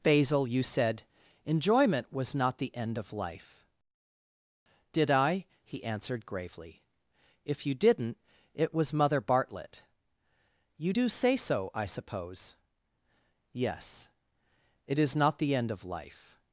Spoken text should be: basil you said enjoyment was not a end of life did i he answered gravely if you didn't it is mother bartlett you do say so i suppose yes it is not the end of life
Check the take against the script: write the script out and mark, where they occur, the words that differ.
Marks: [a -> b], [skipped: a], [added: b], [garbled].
basil you said enjoyment was not [a -> the] end of life did i he answered gravely if you didn't it [is -> was] mother bartlett you do say so i suppose yes it is not the end of life